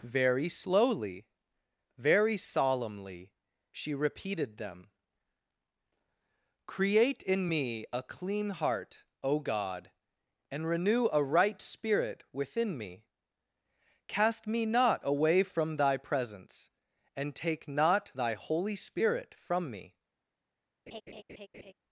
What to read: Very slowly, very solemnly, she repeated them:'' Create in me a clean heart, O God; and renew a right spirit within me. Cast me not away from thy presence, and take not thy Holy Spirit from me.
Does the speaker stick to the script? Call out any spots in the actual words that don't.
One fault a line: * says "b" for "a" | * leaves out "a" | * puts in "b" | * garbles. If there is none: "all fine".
all fine